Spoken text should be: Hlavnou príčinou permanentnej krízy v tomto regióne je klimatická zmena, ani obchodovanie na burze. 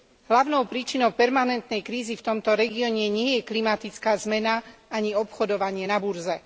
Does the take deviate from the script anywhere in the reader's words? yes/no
yes